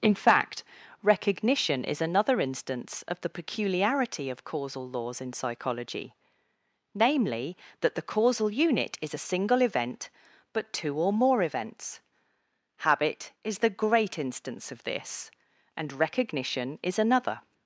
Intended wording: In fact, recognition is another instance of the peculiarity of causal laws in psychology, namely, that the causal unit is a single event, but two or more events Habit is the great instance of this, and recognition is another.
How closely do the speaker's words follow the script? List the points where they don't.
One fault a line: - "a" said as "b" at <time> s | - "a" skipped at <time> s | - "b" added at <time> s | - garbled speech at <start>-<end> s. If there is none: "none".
none